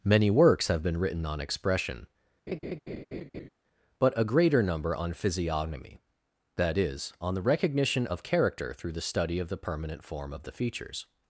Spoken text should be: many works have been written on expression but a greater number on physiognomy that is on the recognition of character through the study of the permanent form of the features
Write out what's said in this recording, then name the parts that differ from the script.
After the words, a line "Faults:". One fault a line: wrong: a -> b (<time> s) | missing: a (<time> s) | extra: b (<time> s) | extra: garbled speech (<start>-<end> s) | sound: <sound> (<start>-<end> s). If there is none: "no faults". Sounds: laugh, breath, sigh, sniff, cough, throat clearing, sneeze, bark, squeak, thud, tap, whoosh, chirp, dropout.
many works have been written on expression but a greater number on physiognomy that is on the recognition of character through the study of the permanent form of the features
Faults:
sound: laugh (2.5-3.5 s)